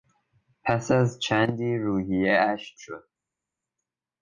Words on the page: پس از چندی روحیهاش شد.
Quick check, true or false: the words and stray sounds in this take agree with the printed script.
true